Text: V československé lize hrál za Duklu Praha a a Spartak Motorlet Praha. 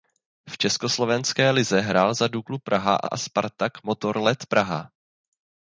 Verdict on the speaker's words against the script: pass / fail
pass